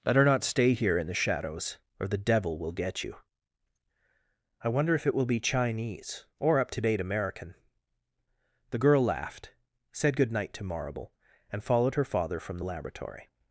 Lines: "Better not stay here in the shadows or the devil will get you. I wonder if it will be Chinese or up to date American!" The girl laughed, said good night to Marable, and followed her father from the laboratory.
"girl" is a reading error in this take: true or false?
false